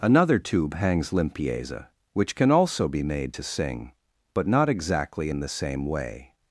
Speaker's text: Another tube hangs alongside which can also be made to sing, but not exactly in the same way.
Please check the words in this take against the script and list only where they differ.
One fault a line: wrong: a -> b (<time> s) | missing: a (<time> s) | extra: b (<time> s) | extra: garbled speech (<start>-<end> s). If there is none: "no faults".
wrong: alongside -> limpieza (1.1 s)